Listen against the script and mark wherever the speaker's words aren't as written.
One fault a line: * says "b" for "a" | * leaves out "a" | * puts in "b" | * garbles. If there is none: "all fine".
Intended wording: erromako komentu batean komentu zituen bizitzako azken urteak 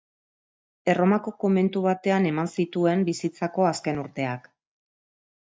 * says "eman" for "komentu"